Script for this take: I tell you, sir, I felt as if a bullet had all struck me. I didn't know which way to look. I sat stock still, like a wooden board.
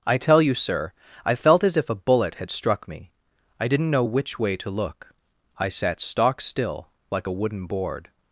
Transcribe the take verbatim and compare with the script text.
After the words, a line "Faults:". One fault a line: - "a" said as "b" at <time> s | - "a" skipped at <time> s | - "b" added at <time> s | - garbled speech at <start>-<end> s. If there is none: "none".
I tell you, sir, I felt as if a bullet had struck me. I didn't know which way to look. I sat stock still, like a wooden board.
Faults:
- "all" skipped at 2.5 s